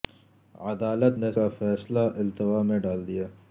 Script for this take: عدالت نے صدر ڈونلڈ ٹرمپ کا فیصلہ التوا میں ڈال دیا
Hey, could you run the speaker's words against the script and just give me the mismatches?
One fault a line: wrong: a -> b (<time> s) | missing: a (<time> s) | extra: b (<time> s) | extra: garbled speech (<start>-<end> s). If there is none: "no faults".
missing: صدر ڈونلڈ ٹرمپ (1.3 s)